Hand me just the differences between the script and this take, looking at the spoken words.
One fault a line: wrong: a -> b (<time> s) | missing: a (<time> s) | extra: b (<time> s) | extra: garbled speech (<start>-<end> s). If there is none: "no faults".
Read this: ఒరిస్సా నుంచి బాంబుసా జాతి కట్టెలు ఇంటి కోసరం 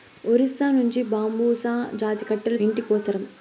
no faults